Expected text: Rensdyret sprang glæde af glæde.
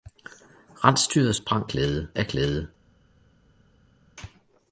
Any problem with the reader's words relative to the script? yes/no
no